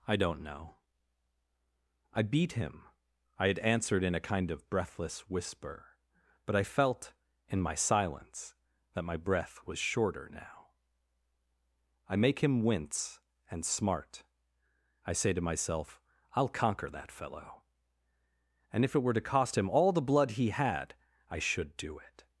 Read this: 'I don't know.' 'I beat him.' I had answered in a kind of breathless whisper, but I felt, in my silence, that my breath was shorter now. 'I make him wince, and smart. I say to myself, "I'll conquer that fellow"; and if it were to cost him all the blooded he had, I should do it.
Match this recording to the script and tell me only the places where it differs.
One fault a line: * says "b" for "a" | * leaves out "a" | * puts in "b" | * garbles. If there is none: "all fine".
* says "blood" for "blooded"